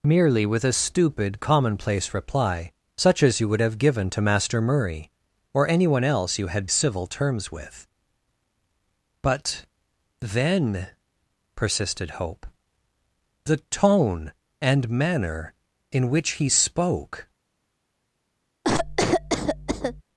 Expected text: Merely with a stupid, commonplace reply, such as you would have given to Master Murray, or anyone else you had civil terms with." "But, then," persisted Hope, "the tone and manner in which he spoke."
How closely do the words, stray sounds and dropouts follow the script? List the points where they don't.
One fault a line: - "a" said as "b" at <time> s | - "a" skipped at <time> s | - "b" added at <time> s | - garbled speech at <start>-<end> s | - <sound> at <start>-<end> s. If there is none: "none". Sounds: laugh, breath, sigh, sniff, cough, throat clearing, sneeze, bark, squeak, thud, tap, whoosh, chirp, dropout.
- cough at 18.6-20.0 s